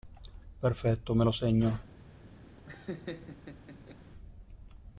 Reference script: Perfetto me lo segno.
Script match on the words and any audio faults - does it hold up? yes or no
no